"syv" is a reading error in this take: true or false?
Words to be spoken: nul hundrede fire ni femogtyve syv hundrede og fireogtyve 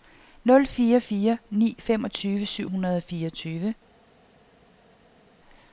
false